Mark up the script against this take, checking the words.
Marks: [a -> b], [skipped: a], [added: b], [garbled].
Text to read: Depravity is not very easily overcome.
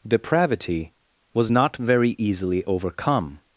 Depravity [is -> was] not very easily overcome.